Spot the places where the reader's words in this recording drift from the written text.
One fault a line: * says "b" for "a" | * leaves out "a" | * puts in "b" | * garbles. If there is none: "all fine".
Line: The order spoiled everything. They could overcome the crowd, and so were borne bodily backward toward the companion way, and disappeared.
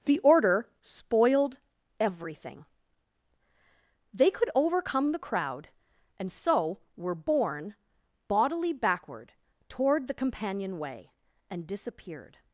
all fine